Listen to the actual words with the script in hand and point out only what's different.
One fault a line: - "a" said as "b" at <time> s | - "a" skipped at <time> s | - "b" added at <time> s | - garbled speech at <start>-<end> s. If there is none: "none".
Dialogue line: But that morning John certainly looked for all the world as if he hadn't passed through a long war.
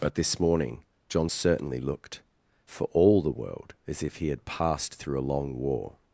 - "that" said as "this" at 0.1 s
- "hadn't" said as "had" at 4.3 s